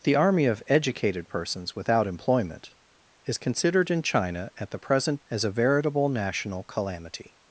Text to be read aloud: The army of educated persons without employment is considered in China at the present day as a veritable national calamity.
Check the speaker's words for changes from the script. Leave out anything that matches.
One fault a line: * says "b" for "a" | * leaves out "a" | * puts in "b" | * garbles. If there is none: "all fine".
* leaves out "day"